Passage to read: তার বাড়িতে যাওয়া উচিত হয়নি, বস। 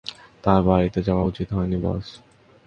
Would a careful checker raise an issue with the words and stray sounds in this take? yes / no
no